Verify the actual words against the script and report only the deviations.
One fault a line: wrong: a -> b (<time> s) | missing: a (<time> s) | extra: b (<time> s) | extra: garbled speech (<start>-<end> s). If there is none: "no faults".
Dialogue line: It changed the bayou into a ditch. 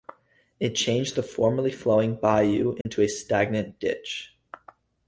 extra: formerly flowing (1.2 s)
extra: stagnant (3.1 s)